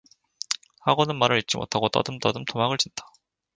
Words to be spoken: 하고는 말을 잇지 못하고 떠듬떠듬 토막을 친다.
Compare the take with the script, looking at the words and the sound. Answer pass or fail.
pass